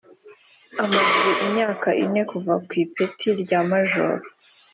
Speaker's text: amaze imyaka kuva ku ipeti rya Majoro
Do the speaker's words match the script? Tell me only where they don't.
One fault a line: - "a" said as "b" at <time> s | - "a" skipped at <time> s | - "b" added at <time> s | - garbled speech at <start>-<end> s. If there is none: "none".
- "ine" added at 2.0 s